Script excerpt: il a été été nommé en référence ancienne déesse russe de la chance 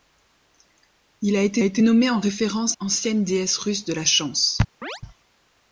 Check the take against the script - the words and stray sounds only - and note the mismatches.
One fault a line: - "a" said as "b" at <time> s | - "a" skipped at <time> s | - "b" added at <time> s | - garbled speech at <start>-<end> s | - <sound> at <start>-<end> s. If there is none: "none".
- chirp at 4.8-5.0 s